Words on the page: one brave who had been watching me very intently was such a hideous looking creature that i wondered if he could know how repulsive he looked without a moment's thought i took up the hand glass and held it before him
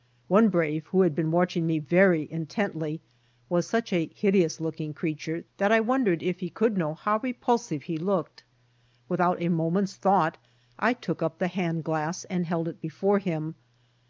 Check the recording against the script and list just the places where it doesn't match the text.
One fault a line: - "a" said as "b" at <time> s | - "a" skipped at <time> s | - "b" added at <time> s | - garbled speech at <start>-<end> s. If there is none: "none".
none